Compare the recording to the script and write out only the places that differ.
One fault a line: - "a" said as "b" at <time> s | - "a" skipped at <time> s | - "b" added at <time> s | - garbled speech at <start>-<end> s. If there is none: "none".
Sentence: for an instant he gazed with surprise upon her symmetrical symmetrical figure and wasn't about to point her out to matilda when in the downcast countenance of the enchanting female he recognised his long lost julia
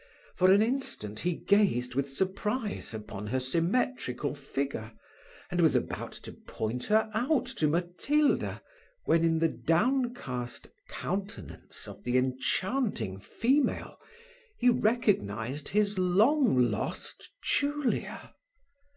- "symmetrical" skipped at 4.3 s
- "wasn't" said as "was" at 5.6 s